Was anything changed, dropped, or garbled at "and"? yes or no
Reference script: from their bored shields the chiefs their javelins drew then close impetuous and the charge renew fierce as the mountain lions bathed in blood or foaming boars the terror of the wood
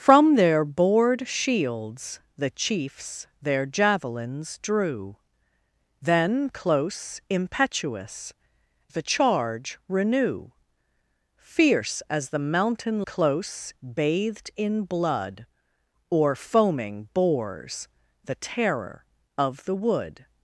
yes